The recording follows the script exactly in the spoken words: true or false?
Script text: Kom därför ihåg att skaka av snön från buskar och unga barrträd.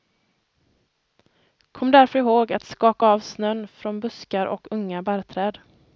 true